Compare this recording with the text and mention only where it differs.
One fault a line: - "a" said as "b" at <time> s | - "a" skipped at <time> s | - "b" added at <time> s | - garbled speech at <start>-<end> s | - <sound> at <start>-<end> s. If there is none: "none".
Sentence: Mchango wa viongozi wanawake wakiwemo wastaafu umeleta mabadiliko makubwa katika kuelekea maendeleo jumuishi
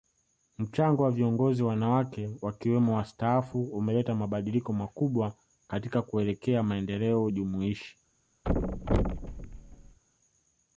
- thud at 8.4-10.0 s